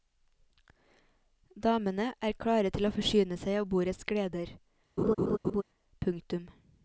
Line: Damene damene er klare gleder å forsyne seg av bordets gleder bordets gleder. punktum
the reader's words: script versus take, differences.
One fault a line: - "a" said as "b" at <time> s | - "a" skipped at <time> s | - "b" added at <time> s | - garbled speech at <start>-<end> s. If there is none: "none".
- "damene" skipped at 2.1 s
- "gleder" said as "til" at 2.7 s
- "bordets gleder" skipped at 4.6 s